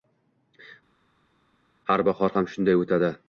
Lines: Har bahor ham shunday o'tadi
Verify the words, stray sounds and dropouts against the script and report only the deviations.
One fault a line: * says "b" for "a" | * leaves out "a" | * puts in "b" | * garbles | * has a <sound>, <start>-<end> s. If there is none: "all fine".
all fine